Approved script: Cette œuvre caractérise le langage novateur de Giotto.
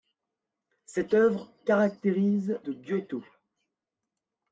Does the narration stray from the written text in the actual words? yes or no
yes